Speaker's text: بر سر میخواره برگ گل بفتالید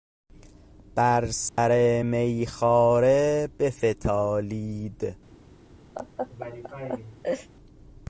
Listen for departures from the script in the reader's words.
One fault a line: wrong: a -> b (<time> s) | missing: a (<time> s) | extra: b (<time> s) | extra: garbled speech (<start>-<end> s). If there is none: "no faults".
missing: برگ گل (3.5 s)